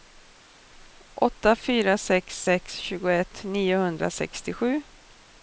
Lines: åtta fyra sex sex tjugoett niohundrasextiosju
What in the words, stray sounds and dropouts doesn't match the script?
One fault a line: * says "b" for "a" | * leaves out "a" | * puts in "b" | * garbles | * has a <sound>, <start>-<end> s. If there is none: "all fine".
all fine